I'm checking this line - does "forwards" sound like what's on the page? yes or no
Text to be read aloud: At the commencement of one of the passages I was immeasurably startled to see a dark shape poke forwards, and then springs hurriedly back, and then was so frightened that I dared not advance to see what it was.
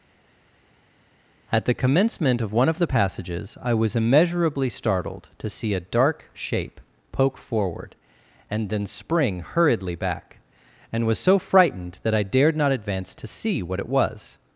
no